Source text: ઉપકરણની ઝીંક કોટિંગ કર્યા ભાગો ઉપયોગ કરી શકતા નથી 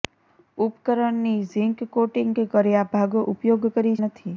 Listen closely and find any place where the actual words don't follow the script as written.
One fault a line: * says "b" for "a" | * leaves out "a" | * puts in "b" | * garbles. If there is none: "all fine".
* leaves out "શકતા"